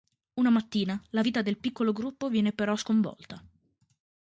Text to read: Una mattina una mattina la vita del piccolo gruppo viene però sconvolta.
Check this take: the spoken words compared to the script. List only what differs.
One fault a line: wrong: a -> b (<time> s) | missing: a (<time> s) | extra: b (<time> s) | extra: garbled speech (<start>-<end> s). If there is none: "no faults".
missing: una mattina (1.0 s)